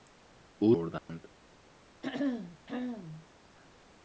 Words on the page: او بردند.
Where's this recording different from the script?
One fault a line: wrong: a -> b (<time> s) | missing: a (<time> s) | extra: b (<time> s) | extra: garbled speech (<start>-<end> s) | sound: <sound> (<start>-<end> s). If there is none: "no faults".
sound: dropout (1.0-1.1 s)
sound: throat clearing (2.0-3.3 s)